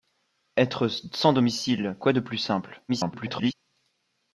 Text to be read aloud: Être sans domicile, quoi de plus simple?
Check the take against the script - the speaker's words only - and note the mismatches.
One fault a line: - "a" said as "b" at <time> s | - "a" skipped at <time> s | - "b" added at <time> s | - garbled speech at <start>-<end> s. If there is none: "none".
- garbled speech at 2.9-3.5 s